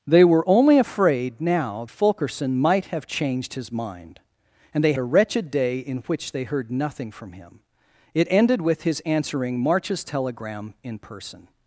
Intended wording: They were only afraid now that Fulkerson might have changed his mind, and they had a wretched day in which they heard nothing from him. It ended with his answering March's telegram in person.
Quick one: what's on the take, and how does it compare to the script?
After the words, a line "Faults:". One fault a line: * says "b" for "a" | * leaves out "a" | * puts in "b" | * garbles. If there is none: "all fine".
They were only afraid now Fulkerson might have changed his mind, and they a wretched day in which they heard nothing from him. It ended with his answering March's telegram in person.
Faults:
* leaves out "that"
* leaves out "had"